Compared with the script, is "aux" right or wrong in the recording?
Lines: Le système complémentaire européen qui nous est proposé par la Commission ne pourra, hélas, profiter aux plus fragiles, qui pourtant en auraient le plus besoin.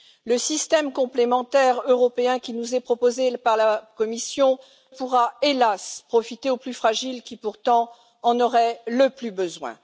right